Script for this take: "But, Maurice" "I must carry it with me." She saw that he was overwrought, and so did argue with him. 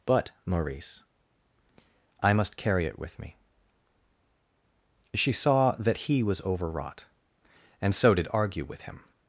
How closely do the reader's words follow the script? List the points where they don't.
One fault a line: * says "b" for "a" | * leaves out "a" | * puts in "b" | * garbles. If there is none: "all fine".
all fine